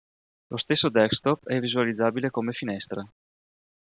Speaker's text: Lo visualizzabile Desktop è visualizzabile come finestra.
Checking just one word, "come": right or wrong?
right